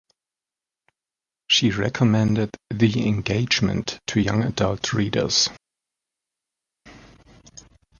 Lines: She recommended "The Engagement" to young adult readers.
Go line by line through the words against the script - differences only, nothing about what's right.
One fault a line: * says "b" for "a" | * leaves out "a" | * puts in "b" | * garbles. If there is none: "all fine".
all fine